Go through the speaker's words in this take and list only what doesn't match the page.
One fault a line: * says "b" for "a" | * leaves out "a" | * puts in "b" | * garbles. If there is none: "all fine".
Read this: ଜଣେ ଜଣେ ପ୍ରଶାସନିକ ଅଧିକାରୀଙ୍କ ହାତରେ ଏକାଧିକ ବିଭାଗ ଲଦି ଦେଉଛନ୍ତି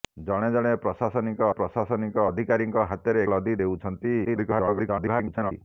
* puts in "ପ୍ରଶାସନିକ"
* leaves out "ଏକାଧିକ ବିଭାଗ"
* garbles